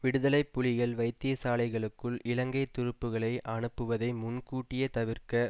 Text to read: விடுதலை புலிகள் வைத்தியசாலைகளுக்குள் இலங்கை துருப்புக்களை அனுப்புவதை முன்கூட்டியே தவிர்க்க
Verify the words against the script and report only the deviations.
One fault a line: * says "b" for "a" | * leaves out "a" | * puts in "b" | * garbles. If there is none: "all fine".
all fine